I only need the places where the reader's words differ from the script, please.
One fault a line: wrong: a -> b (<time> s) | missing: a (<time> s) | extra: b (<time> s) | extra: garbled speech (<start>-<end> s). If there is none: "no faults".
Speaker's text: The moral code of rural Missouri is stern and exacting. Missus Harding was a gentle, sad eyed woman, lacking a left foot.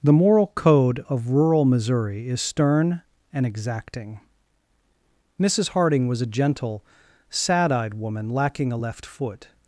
no faults